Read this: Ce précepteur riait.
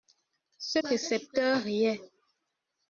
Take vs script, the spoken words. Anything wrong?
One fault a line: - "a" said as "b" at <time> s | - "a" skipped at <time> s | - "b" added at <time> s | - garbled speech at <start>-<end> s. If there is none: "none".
none